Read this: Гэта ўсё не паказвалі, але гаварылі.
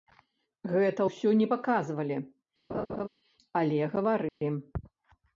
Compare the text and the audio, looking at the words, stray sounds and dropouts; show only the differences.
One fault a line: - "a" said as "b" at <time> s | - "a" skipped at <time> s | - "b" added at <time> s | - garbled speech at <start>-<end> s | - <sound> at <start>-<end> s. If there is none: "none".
- laugh at 2.7-3.1 s
- dropout at 4.3-4.4 s